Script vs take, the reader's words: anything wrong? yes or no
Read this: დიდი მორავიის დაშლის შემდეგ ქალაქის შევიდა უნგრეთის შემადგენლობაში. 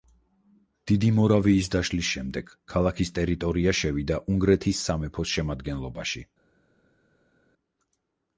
yes